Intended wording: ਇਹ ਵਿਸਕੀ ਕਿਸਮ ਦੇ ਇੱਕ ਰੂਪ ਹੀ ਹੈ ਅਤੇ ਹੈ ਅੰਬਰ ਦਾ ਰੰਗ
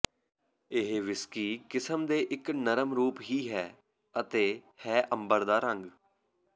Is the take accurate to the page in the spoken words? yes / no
no